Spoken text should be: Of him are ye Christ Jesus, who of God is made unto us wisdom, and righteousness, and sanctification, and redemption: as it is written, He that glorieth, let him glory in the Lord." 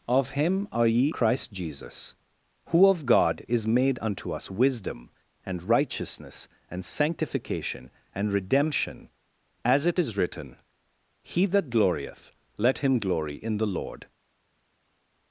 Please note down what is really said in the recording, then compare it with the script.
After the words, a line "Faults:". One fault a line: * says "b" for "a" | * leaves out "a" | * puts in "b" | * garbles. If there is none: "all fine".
Of him are ye Christ Jesus, who of God is made unto us wisdom, and righteousness, and sanctification, and redemption: as it is written, He that glorieth, let him glory in the Lord."
Faults:
all fine